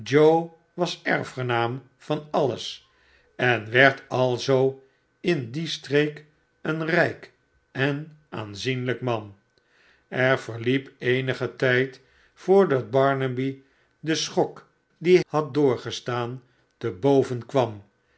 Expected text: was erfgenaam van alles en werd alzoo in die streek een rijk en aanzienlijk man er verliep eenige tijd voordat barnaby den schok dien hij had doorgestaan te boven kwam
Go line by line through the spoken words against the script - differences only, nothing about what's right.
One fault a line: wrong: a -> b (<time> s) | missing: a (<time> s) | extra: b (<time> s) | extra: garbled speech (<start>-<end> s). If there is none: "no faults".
missing: hij (15.2 s)